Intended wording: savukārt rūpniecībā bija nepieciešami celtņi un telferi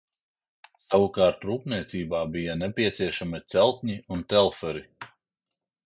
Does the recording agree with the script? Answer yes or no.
yes